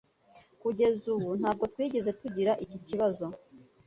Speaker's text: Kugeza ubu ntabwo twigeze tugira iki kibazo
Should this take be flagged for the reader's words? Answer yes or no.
no